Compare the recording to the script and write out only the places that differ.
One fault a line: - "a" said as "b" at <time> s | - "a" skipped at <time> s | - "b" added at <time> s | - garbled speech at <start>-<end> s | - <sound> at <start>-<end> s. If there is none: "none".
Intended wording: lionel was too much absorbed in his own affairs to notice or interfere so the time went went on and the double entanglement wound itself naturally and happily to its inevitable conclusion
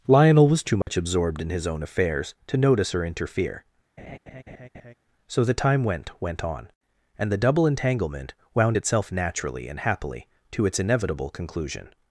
- dropout at 0.8-0.9 s
- laugh at 4.0-4.9 s